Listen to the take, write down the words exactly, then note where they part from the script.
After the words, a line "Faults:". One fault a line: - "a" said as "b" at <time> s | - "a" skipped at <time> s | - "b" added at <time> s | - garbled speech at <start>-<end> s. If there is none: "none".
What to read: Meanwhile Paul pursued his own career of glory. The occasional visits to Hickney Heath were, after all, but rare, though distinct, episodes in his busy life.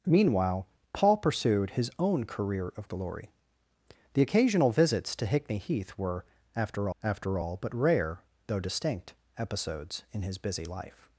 Meanwhile Paul pursued his own career of glory. The occasional visits to Hickney Heath were, after after all, but rare, though distinct, episodes in his busy life.
Faults:
- "after" added at 7.0 s